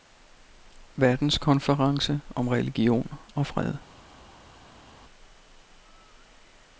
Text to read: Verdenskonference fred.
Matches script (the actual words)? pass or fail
fail